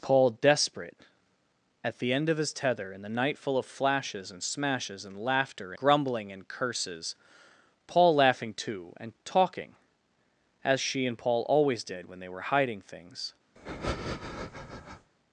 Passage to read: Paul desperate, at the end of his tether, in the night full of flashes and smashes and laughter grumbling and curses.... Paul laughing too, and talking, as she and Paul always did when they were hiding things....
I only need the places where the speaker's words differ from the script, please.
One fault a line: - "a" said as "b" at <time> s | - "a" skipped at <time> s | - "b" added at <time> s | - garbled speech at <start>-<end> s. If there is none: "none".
none